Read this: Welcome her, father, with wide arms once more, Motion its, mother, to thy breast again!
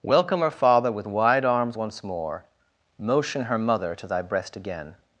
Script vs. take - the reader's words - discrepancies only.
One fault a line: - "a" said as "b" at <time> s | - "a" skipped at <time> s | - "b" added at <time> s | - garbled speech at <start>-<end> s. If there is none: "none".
- "its" said as "her" at 3.4 s